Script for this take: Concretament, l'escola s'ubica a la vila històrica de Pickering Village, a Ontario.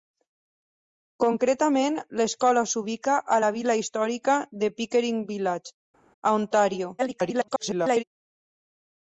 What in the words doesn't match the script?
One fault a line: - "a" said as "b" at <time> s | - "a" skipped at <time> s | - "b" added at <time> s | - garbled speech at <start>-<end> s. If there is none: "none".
- garbled speech at 7.0-8.0 s